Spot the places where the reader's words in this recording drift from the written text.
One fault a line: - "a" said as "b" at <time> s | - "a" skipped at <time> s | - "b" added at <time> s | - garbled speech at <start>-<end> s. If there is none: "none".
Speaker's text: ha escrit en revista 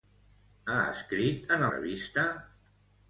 none